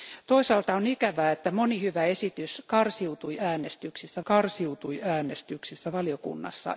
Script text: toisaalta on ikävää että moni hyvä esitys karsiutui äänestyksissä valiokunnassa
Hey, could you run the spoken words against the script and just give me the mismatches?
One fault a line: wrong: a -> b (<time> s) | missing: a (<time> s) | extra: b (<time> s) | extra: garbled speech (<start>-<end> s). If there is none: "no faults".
extra: karsiutui äänestyksissä (4.2 s)